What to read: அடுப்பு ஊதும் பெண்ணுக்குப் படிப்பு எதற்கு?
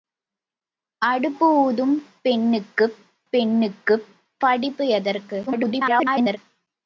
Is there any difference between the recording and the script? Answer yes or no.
yes